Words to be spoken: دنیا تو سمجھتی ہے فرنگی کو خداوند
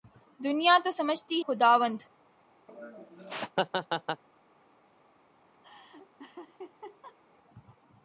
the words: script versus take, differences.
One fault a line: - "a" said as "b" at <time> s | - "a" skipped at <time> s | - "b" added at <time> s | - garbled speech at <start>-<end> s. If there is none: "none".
- "ہے فرنگی کو" skipped at 1.4 s